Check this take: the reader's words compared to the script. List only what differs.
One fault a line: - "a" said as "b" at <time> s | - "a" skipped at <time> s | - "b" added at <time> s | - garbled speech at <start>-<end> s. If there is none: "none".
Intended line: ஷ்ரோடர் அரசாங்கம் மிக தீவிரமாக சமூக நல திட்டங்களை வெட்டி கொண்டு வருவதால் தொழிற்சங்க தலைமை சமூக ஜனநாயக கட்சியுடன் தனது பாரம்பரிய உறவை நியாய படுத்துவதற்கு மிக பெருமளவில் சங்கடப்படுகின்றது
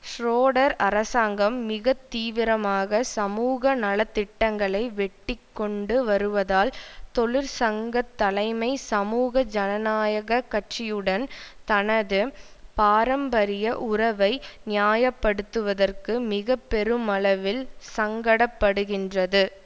none